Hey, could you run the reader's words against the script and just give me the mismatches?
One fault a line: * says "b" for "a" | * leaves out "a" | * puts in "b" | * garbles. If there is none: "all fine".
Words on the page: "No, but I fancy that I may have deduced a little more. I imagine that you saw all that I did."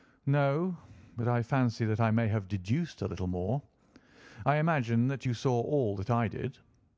all fine